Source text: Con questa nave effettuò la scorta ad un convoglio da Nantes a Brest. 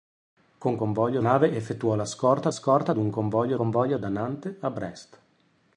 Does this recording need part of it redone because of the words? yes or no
yes